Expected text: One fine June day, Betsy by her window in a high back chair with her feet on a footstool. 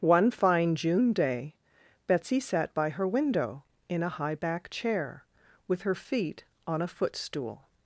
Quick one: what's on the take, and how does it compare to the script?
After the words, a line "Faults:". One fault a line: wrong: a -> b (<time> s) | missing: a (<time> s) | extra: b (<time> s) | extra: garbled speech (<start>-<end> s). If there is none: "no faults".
One fine June day, Betsy sat by her window in a high back chair with her feet on a footstool.
Faults:
extra: sat (2.4 s)